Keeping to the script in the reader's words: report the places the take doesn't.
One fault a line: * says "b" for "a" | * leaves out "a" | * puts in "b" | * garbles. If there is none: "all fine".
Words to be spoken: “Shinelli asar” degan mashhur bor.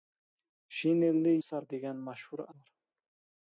all fine